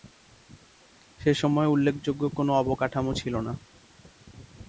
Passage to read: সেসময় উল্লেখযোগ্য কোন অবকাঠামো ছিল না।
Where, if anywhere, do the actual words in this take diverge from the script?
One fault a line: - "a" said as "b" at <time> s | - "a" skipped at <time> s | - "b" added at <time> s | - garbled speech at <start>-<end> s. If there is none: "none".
none